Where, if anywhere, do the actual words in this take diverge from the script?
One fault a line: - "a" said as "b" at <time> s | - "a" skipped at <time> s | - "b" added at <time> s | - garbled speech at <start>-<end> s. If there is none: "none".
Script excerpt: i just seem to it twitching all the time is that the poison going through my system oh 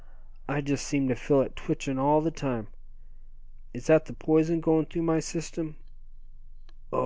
- "feel" added at 1.1 s